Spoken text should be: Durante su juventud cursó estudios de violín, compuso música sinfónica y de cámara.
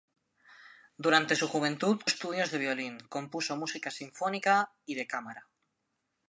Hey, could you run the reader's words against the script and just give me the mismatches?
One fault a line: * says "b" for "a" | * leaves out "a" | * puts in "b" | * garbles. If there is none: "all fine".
* leaves out "cursó"